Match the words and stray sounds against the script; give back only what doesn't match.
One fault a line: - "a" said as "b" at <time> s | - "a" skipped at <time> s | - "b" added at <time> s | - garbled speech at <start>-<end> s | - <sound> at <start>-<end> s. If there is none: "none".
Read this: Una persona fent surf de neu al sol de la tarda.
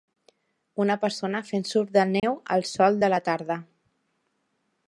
- dropout at 2.2-2.2 s